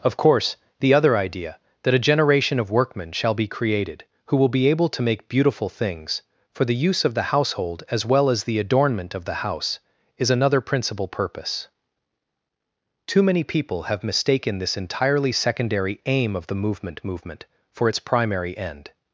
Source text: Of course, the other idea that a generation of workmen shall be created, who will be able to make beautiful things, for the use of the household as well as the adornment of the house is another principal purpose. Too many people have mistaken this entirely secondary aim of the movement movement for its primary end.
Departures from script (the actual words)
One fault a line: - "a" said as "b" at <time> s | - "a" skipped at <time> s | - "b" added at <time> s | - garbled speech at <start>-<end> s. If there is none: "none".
none